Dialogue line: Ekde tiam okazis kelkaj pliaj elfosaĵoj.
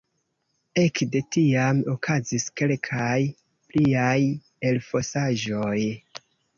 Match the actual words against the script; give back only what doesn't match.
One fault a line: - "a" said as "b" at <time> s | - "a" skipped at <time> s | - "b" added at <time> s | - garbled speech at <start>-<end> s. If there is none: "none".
none